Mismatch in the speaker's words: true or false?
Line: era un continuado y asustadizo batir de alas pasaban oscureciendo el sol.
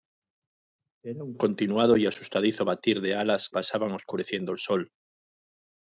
false